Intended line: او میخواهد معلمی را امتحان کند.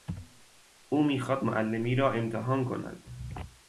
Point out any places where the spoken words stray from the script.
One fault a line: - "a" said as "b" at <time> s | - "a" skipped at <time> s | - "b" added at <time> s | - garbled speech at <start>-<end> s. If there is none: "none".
none